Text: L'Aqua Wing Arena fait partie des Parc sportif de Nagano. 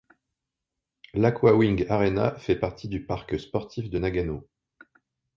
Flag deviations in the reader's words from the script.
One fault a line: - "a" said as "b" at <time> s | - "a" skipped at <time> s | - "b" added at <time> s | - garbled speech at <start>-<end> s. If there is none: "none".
- "des" said as "du" at 2.9 s